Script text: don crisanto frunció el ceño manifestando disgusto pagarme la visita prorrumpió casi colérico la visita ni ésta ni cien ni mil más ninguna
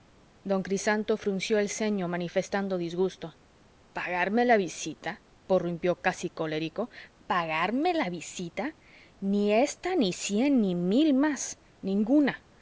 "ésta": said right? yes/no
yes